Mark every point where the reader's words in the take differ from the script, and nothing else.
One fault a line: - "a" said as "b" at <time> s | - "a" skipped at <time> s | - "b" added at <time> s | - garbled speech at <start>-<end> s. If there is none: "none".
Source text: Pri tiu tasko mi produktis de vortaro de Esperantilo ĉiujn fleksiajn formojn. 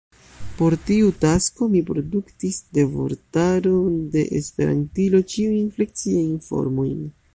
- "Pri" said as "Por" at 0.6 s